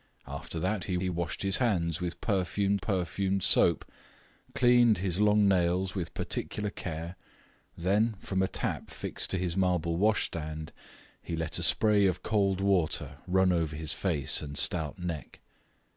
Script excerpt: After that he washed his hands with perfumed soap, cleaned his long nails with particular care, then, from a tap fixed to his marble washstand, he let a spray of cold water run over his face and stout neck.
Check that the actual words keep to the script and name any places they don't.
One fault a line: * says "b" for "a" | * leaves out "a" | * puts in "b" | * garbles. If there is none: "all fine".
* puts in "he"
* puts in "perfumed"